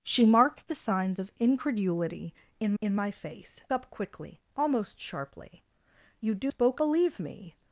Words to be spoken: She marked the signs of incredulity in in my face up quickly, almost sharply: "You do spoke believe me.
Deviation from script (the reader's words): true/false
false